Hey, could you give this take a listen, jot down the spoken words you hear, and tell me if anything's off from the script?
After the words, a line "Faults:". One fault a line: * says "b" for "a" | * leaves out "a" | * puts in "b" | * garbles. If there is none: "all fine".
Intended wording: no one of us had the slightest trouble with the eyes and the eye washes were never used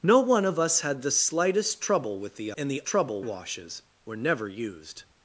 no one of us had the slightest trouble with the and the trouble washes were never used
Faults:
* leaves out "eyes"
* says "trouble" for "eye"